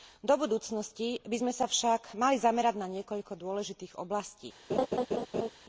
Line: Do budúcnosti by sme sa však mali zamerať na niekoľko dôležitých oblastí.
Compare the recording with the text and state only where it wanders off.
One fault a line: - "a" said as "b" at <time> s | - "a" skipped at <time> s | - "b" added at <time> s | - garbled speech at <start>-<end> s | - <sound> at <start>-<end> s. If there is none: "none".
- laugh at 4.7-5.5 s